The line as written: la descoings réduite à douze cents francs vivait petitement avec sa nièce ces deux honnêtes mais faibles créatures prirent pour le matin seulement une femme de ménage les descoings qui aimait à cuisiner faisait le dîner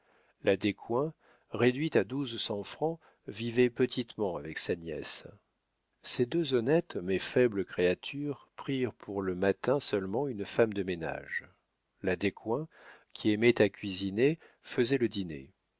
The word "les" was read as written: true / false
false